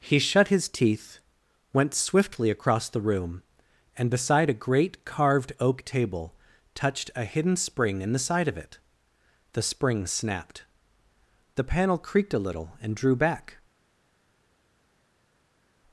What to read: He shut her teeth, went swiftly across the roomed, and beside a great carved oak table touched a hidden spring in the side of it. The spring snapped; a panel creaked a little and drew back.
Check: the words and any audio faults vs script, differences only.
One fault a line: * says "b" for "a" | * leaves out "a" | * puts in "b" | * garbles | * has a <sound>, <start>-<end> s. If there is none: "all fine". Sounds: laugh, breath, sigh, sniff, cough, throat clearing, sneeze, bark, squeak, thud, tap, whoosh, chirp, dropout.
* says "his" for "her"
* says "room" for "roomed"
* says "the" for "a"